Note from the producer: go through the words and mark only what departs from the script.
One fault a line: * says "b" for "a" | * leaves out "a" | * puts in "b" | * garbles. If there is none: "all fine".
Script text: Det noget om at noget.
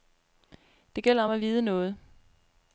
* says "gælder" for "noget"
* puts in "vide"